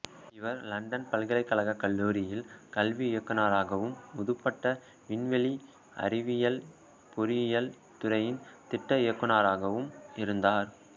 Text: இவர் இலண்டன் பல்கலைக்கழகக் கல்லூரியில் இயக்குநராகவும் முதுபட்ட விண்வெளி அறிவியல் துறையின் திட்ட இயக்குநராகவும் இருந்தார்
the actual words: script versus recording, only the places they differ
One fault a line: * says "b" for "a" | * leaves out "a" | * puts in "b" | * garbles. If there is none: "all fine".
* puts in "கல்வி"
* puts in "பொறியியல்"